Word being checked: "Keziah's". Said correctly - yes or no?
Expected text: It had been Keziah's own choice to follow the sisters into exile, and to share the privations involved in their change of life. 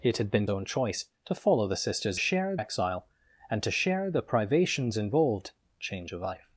no